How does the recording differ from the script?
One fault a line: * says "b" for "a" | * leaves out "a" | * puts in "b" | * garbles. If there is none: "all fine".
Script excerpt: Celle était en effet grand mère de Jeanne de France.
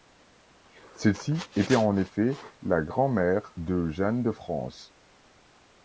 * puts in "ci"
* puts in "la"